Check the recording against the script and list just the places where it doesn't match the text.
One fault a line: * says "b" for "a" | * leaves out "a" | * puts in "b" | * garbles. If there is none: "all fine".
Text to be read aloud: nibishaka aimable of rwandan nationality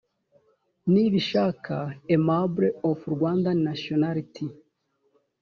all fine